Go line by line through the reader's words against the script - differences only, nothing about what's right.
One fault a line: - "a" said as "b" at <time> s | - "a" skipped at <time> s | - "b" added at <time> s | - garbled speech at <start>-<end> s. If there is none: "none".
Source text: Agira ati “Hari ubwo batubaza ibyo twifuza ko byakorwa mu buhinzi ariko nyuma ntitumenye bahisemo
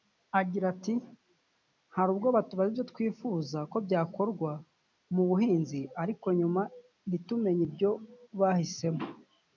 - "ibyo" added at 7.7 s